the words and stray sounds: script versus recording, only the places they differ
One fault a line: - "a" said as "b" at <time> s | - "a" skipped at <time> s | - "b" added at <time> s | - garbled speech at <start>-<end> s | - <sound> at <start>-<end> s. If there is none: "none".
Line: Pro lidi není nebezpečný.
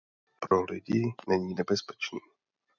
- dropout at 0.5-0.5 s